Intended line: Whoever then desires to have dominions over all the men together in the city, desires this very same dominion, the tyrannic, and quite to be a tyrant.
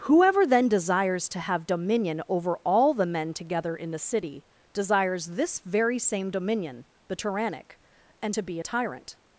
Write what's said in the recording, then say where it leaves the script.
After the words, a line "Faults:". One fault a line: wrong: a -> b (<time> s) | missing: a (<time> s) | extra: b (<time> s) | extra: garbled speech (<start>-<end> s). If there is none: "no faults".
Whoever then desires to have dominion over all the men together in the city, desires this very same dominion, the tyrannic, and to be a tyrant.
Faults:
wrong: dominions -> dominion (1.7 s)
missing: quite (8.3 s)